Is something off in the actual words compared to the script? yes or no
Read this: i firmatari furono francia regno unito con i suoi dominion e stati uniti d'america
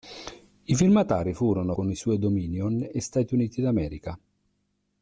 yes